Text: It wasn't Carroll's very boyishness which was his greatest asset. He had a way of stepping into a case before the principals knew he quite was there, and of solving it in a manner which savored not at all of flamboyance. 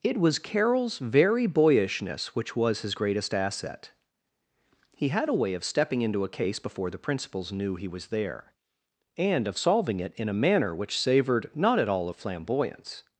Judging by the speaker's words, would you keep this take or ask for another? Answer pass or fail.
fail